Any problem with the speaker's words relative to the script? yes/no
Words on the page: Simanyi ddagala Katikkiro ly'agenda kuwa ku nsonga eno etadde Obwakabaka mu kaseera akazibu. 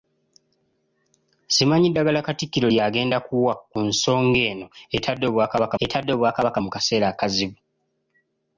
yes